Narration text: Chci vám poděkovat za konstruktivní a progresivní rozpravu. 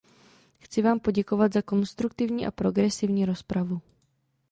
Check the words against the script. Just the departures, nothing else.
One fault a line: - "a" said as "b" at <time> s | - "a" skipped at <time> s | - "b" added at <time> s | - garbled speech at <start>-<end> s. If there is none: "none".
none